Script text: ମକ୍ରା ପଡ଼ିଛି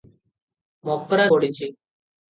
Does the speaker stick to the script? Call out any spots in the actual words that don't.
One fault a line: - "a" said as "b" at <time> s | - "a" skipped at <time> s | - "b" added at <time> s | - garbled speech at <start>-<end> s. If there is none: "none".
none